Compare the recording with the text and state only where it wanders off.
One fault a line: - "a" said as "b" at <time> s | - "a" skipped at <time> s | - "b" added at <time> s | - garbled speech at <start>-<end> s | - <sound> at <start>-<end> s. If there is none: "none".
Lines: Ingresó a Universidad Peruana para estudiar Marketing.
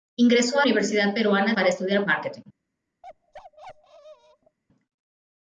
- bark at 3.0-4.6 s